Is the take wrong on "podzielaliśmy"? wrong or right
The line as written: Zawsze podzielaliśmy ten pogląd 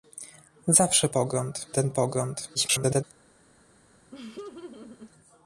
wrong